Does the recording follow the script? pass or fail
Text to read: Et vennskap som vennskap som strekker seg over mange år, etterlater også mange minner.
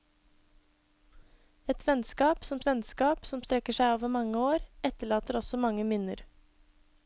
pass